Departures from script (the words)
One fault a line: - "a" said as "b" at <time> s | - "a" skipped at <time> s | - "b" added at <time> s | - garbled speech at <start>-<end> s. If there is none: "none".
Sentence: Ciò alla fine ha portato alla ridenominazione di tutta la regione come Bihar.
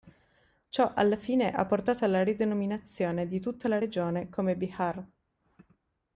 none